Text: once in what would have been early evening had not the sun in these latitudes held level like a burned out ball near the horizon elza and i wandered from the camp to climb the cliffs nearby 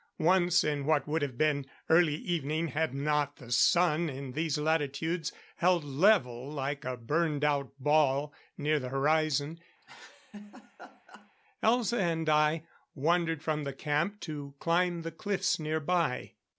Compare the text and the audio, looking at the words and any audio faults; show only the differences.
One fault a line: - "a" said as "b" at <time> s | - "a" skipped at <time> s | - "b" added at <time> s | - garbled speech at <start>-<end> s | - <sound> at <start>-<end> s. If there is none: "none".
- laugh at 9.8-11.3 s